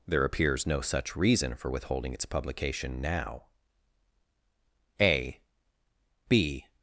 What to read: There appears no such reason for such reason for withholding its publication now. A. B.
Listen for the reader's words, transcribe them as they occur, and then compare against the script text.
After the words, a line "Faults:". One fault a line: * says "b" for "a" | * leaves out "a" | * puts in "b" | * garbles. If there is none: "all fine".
There appears no such reason for withholding its publication now. A. B.
Faults:
* leaves out "such reason for"